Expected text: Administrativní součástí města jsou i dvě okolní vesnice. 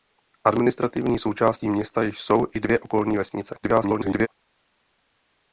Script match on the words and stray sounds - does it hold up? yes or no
no